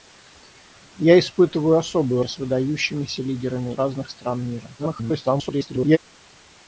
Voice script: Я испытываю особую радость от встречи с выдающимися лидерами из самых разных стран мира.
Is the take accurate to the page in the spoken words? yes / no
no